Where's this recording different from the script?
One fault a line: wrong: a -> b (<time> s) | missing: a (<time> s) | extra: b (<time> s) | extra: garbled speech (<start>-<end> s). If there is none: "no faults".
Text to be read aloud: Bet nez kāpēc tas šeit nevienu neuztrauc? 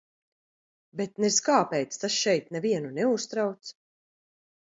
no faults